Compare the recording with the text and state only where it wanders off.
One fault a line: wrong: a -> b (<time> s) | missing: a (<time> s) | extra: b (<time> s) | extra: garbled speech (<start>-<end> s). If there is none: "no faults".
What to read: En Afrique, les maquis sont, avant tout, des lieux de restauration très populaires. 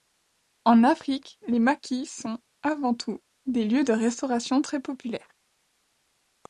no faults